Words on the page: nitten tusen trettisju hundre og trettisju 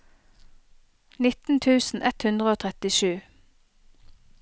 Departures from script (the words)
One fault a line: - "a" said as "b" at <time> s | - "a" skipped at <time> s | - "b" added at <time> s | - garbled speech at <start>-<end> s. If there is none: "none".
- "trettisju" said as "ett" at 2.1 s